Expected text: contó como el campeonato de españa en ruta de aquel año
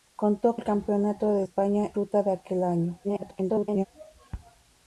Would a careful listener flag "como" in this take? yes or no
yes